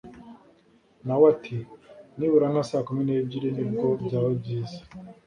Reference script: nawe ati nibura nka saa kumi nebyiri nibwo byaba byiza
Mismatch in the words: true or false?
false